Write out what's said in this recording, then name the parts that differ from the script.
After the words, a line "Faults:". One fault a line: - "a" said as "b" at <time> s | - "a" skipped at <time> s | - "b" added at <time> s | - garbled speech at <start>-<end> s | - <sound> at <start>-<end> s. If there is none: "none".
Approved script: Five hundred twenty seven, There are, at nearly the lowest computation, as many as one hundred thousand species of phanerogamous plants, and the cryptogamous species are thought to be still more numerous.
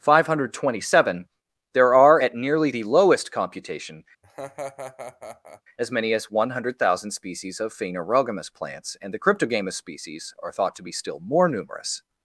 Five hundred twenty seven, There are, at nearly the lowest computation, as many as one hundred thousand species of phanerogamous plants, and the cryptogamous species are thought to be still more numerous.
Faults:
- laugh at 4.2-5.6 s